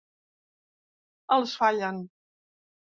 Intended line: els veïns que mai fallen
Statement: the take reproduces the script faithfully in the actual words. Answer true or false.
false